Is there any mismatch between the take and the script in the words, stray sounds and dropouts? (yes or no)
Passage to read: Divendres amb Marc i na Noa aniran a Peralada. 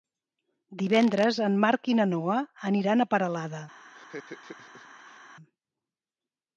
yes